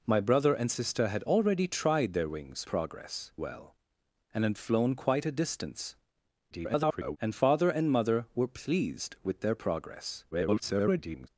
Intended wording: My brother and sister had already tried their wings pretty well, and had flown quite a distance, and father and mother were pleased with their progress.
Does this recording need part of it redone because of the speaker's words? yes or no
yes